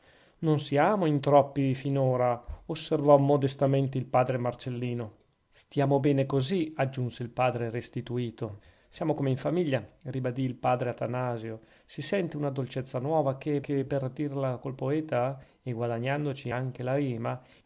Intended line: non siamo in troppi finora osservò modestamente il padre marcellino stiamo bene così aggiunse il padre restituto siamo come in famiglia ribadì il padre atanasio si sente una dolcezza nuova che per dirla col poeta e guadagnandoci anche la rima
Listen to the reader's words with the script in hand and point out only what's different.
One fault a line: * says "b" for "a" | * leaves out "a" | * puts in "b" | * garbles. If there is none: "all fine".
* puts in "che"